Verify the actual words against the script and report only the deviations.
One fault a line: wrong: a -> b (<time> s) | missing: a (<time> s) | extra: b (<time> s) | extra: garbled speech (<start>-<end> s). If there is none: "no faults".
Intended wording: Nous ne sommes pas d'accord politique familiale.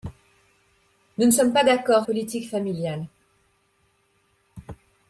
no faults